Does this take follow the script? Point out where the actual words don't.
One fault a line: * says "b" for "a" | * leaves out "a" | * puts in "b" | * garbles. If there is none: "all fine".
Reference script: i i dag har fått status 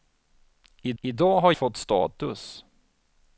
all fine